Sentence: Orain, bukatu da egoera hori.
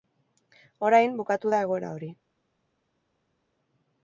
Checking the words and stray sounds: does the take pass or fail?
pass